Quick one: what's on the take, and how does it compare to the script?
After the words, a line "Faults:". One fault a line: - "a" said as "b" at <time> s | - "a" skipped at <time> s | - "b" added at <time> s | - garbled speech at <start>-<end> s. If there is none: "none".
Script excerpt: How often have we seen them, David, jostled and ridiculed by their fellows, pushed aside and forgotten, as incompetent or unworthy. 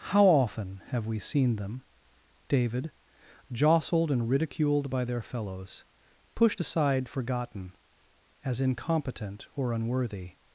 How often have we seen them, David, jostled and ridiculed by their fellows, pushed aside forgotten, as incompetent or unworthy.
Faults:
- "and" skipped at 7.1 s